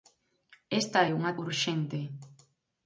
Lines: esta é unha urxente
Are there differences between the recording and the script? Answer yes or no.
no